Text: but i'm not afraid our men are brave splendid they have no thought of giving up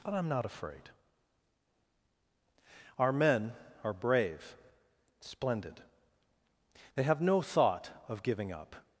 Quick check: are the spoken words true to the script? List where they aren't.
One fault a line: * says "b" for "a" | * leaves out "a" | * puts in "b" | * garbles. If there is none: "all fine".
all fine